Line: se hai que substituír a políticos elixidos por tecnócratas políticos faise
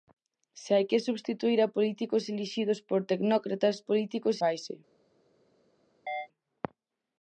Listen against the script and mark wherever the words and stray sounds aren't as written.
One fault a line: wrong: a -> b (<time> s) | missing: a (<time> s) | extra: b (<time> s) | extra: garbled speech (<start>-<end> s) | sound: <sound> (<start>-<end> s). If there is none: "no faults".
sound: chirp (6.1-6.3 s)